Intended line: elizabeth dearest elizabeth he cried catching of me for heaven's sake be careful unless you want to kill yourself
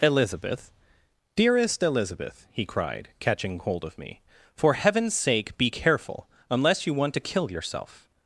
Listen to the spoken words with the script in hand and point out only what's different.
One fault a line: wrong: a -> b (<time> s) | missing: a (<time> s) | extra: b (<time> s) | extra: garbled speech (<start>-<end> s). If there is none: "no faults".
extra: hold (3.6 s)